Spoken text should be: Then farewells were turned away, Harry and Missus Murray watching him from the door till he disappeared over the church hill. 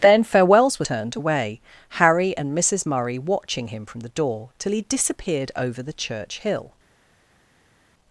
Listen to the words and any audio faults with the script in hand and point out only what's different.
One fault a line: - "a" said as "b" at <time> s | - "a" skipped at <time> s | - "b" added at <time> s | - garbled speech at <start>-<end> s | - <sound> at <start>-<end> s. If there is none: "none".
none